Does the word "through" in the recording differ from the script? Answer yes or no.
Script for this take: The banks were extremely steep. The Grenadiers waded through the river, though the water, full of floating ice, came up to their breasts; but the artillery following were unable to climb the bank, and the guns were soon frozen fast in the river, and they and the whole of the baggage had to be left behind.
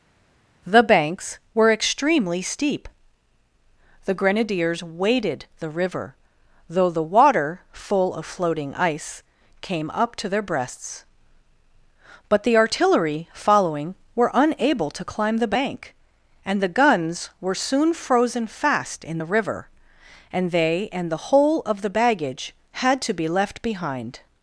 yes